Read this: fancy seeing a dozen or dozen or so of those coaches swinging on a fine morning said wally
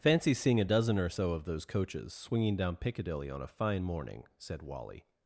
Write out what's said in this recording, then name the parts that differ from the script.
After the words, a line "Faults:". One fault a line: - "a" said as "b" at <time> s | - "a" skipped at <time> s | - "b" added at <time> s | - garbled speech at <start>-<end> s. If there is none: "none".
fancy seeing a dozen or so of those coaches swinging down piccadilly on a fine morning said wally
Faults:
- "dozen or" skipped at 1.1 s
- "down piccadilly" added at 2.5 s